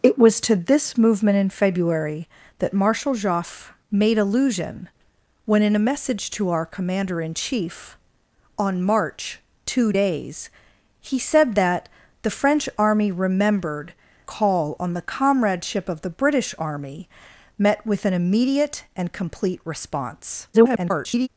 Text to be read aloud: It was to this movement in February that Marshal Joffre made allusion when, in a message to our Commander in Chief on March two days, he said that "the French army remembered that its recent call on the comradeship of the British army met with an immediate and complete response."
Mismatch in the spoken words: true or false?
true